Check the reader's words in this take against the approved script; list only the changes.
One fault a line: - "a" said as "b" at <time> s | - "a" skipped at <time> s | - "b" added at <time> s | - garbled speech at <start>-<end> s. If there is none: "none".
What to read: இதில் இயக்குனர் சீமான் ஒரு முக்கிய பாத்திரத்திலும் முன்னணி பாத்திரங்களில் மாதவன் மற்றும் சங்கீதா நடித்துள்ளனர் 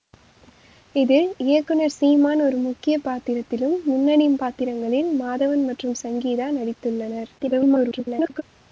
- garbled speech at 7.4-8.4 s